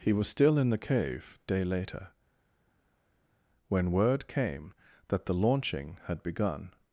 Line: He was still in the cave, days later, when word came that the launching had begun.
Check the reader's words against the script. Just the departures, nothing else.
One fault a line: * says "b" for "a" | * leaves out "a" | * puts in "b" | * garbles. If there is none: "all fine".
* says "day" for "days"